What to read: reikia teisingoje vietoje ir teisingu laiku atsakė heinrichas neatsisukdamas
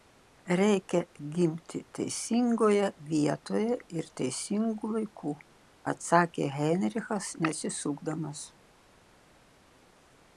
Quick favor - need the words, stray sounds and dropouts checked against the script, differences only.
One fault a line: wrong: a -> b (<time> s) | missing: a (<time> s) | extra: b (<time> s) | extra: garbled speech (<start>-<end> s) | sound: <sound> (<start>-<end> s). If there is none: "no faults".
extra: gimti (1.4 s)